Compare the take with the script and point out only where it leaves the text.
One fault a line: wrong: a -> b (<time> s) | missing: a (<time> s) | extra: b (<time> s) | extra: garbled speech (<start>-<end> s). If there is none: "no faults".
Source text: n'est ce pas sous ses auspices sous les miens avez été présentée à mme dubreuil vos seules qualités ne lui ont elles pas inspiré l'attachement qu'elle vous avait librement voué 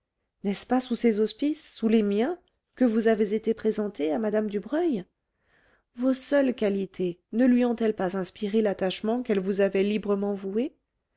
extra: que vous (2.7 s)